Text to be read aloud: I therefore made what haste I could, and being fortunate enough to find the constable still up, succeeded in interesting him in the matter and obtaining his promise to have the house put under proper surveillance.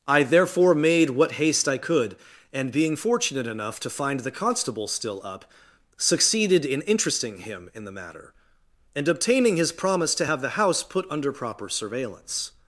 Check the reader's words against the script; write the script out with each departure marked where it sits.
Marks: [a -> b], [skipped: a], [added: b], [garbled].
I therefore made what haste I could, and being fortunate enough to find the constable still up, succeeded in interesting him in the matter and obtaining his promise to have the house put under proper surveillance.